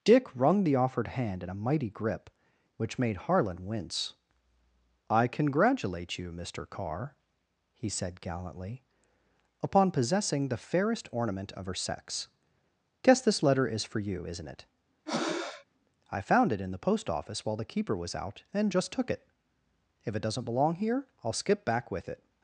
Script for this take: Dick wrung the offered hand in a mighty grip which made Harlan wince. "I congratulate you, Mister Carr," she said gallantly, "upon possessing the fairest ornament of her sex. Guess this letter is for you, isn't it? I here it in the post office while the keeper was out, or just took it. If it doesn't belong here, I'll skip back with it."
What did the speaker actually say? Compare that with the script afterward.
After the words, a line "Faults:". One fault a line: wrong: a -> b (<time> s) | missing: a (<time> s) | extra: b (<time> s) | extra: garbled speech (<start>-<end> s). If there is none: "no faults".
Dick wrung the offered hand in a mighty grip which made Harlan wince. "I congratulate you, Mister Carr," he said gallantly, "upon possessing the fairest ornament of her sex. Guess this letter is for you, isn't it? I found it in the post office while the keeper was out, and just took it. If it doesn't belong here, I'll skip back with it."
Faults:
wrong: she -> he (7.7 s)
wrong: here -> found (16.2 s)
wrong: or -> and (18.5 s)